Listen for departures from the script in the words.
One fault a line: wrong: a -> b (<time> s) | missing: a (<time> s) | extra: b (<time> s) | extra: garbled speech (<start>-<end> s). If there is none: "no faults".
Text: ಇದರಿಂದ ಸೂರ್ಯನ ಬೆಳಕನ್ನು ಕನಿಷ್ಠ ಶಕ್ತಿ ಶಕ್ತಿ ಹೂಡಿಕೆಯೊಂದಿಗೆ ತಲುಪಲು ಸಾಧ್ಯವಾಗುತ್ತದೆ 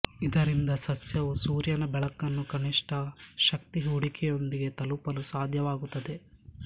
extra: ಸಸ್ಯವು (0.8 s)
missing: ಶಕ್ತಿ (3.8 s)